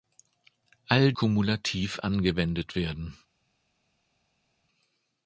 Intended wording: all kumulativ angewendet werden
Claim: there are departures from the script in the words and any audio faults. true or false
false